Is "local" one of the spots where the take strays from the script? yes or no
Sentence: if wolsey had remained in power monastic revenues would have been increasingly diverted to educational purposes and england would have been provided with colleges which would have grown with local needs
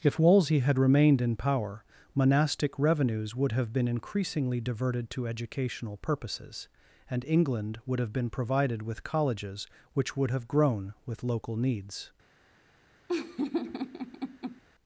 no